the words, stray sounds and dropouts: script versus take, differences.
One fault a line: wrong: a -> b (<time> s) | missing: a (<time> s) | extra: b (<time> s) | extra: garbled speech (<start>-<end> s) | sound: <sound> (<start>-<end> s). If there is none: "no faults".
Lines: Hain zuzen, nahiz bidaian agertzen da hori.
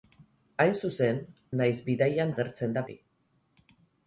no faults